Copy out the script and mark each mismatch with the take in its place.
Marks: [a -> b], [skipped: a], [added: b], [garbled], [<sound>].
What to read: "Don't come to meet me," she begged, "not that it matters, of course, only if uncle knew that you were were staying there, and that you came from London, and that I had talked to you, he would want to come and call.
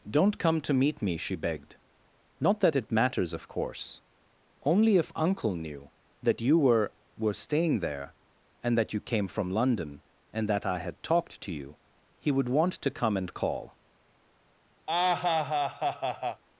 "Don't come to meet me," she begged, "not that it matters, of course, only if uncle knew that you were were staying there, and that you came from London, and that I had talked to you, he would want to come and call. [laugh]